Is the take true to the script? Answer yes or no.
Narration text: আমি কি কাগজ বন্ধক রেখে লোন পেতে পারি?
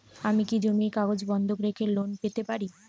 no